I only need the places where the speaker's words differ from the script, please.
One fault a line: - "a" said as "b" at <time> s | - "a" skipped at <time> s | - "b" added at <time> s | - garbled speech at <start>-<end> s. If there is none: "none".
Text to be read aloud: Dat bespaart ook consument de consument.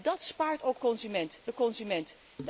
none